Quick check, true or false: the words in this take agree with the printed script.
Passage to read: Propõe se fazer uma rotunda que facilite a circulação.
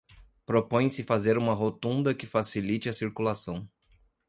true